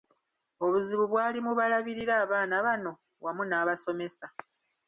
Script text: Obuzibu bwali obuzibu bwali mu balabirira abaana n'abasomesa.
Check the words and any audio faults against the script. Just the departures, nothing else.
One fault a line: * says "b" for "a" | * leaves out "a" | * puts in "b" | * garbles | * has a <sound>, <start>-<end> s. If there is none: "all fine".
* leaves out "obuzibu bwali"
* puts in "bano wamu"